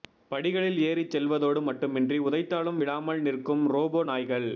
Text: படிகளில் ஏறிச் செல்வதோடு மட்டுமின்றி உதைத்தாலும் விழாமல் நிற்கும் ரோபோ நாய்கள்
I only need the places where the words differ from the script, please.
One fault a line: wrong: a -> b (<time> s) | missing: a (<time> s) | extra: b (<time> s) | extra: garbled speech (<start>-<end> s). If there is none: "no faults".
no faults